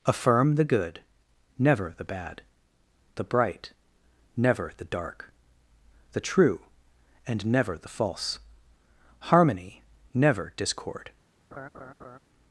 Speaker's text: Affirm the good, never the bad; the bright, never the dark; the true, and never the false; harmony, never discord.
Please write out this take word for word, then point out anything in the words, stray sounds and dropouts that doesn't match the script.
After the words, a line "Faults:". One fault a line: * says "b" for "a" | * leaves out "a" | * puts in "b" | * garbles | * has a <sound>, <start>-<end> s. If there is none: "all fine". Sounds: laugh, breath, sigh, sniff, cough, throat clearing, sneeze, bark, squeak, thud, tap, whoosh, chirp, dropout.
Affirm the good, never the bad; the bright, never the dark; the true, and never the false; harmony, never discord.
Faults:
* has a laugh, 11.5-12.2 s